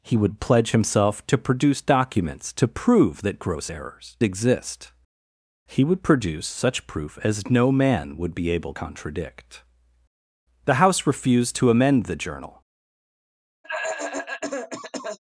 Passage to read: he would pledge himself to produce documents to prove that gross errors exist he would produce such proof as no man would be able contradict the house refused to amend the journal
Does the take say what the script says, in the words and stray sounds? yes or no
no